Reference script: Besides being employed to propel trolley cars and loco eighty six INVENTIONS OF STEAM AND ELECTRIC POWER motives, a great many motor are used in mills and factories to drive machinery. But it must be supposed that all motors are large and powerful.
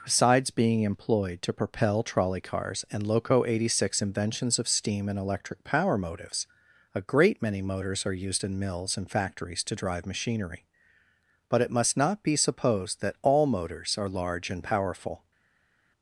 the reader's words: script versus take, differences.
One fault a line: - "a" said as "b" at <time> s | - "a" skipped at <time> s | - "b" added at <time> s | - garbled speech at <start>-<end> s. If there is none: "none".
- "motor" said as "motors" at 7.6 s
- "not" added at 12.0 s